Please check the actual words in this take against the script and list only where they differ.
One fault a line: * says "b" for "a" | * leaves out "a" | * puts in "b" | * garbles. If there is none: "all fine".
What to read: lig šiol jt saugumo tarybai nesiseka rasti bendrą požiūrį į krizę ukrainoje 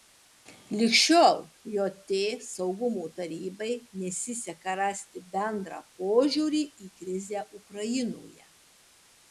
all fine